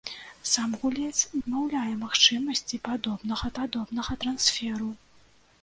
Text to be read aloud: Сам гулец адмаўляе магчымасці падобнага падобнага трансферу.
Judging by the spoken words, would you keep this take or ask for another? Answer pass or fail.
pass